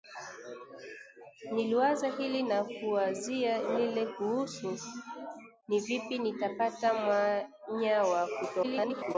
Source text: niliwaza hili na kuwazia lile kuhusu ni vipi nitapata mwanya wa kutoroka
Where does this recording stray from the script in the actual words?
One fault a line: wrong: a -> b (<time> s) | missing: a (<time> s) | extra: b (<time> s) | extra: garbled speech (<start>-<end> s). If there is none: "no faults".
extra: garbled speech (8.6-9.2 s)